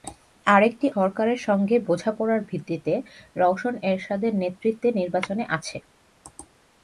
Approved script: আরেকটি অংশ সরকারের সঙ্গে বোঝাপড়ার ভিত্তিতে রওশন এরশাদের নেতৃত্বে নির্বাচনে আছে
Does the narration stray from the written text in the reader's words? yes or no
yes